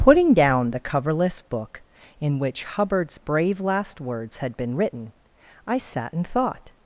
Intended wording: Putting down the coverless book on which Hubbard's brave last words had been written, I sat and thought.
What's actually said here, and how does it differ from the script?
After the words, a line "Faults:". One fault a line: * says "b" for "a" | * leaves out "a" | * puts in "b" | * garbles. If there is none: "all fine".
Putting down the coverless book in which Hubbard's brave last words had been written, I sat and thought.
Faults:
* says "in" for "on"